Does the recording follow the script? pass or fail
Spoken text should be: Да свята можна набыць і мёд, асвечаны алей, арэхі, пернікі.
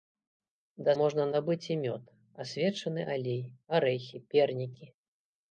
fail